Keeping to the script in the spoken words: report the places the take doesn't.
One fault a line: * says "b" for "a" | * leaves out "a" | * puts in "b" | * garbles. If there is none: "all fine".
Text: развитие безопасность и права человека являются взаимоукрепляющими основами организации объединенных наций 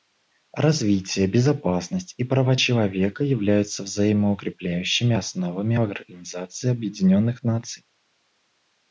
all fine